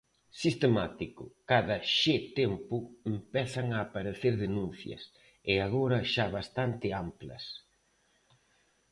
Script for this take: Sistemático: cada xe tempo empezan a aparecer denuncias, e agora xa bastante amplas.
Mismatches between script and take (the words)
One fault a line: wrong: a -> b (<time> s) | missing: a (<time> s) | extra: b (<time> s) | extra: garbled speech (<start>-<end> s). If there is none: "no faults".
no faults